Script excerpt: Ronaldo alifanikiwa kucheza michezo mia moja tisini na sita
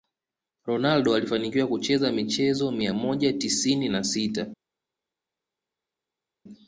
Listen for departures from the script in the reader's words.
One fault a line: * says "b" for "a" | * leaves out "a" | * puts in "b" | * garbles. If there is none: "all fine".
all fine